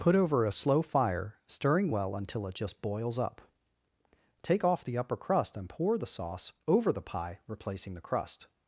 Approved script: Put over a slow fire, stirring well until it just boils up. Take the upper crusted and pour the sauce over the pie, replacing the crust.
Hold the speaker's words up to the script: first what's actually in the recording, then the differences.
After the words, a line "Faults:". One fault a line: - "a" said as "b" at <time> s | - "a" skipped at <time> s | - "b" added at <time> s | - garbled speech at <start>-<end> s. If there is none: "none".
Put over a slow fire, stirring well until it just boils up. Take off the upper crust and pour the sauce over the pie, replacing the crust.
Faults:
- "off" added at 4.6 s
- "crusted" said as "crust" at 5.2 s